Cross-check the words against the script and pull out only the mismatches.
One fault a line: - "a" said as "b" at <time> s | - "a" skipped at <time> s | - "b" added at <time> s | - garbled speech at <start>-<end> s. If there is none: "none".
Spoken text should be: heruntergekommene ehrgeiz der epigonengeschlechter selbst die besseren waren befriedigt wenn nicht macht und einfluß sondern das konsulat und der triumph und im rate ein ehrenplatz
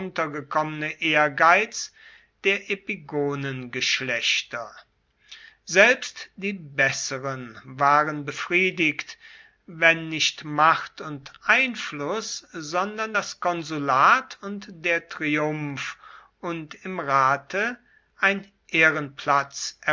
none